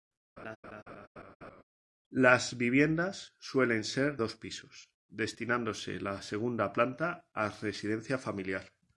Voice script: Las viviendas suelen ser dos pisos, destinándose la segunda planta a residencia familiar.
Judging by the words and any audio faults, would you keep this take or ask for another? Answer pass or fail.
fail